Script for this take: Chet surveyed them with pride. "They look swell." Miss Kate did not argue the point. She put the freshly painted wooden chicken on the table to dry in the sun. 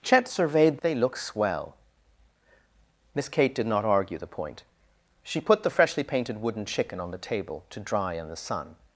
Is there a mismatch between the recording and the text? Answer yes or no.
yes